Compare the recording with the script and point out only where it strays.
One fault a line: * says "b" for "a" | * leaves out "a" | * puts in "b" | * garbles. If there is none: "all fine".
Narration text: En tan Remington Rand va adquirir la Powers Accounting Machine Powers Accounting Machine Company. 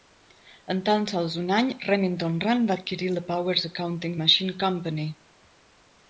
* puts in "sols un any"
* leaves out "Powers Accounting Machine"